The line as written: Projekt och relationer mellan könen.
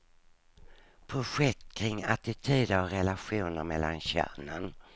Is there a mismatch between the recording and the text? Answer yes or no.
yes